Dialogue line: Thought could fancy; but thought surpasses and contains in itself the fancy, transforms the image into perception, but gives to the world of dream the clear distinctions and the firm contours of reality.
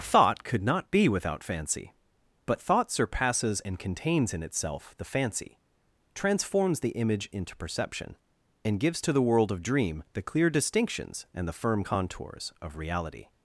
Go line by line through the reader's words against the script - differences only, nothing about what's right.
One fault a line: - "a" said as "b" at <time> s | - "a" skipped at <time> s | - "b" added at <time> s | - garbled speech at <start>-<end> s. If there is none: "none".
- "not be without" added at 0.6 s
- "but" said as "and" at 8.6 s